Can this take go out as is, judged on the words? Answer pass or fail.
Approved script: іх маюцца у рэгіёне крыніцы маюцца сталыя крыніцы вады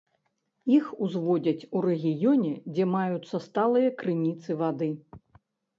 fail